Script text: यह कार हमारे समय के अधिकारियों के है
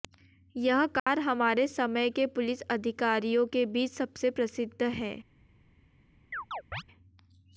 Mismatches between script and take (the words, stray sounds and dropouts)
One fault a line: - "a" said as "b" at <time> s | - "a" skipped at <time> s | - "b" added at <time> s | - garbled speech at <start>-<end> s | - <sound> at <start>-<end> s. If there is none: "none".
- dropout at 1.0-1.1 s
- "पुलिस" added at 2.3 s
- "बीच सबसे प्रसिद्ध" added at 3.7 s
- chirp at 6.3-6.8 s